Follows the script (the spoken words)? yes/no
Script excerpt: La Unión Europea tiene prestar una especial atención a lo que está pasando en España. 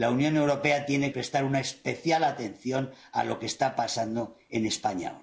yes